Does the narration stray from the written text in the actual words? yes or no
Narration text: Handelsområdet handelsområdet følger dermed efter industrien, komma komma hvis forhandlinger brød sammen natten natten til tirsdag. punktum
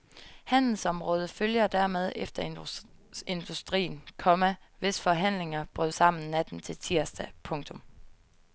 yes